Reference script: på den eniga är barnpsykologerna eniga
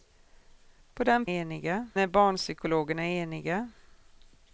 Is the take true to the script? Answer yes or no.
yes